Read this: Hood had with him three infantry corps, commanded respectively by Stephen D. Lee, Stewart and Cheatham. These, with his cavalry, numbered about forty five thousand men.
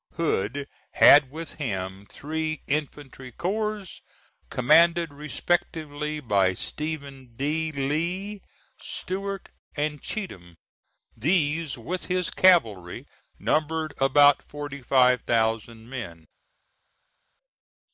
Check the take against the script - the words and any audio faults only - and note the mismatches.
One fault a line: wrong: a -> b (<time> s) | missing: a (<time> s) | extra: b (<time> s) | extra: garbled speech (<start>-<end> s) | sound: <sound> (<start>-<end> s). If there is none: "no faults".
no faults